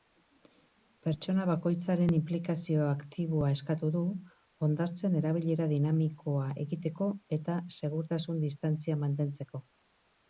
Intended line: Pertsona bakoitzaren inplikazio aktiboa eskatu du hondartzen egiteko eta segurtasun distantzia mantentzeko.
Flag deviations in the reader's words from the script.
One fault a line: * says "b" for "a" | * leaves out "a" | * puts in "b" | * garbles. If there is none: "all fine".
* puts in "erabilera dinamikoa"